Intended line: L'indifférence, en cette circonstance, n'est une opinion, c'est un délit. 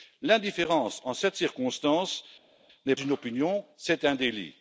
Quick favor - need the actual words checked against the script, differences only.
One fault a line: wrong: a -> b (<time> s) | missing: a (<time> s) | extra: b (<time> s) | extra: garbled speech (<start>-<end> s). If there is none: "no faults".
no faults